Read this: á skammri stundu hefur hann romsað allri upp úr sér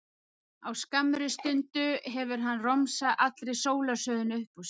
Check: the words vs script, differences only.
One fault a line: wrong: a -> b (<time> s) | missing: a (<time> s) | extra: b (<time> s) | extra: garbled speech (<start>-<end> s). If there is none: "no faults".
extra: sólarsögunni (3.6 s)